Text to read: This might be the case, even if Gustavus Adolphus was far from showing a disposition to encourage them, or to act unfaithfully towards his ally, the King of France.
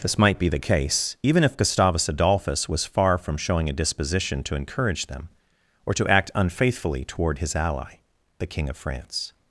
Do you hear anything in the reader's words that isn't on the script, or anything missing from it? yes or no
yes